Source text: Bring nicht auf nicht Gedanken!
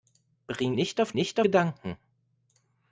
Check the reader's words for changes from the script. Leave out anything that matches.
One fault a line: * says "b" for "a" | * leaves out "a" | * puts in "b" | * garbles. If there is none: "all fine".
all fine